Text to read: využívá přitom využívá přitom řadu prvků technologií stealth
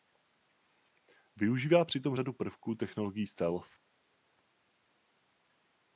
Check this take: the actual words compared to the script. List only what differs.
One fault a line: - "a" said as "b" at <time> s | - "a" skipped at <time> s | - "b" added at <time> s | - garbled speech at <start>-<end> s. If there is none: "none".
- "využívá přitom" skipped at 2.1 s